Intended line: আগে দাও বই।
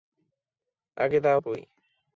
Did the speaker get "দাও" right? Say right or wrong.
right